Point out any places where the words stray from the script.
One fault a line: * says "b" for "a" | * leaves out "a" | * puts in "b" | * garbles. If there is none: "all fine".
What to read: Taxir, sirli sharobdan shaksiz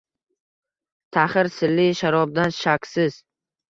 all fine